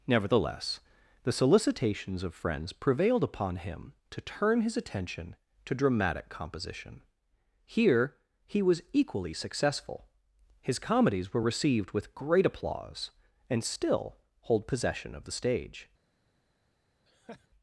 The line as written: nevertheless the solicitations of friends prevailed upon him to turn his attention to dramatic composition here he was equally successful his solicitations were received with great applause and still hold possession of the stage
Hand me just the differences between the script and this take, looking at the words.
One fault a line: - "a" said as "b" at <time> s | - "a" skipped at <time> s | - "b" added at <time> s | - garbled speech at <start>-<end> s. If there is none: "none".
- "solicitations" said as "comedies" at 10.8 s